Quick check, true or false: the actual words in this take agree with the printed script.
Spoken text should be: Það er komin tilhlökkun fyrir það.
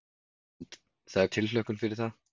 false